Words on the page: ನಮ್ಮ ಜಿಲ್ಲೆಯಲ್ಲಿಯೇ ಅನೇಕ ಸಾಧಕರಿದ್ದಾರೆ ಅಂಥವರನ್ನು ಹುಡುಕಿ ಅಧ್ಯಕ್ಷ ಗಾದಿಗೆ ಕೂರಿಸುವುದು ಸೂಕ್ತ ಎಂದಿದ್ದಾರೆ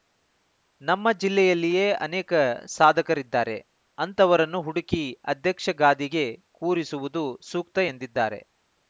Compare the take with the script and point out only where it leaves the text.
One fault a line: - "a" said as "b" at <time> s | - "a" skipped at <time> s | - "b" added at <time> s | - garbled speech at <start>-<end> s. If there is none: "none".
none